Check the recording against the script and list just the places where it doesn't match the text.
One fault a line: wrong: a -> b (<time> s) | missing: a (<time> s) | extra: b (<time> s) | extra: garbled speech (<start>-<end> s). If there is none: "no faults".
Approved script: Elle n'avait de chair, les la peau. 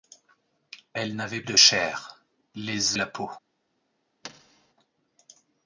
no faults